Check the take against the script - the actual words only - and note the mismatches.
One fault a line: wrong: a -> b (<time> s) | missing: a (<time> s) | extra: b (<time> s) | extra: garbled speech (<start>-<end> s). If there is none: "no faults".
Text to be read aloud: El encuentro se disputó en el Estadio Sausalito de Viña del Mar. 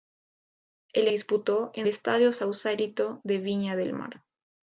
missing: encuentro se (1.1 s)
missing: el (1.9 s)